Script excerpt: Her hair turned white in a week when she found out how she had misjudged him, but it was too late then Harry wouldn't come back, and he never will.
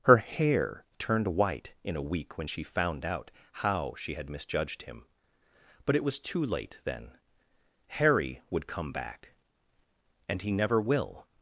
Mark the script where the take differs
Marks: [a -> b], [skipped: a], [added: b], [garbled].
Her hair turned white in a week when she found out how she had misjudged him, but it was too late then Harry [wouldn't -> would] come back, and he never will.